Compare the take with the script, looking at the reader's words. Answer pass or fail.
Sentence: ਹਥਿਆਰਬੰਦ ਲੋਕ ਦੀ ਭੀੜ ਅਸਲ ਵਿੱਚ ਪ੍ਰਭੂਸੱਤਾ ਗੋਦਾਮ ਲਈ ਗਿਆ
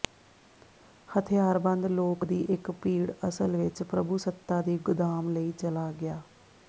fail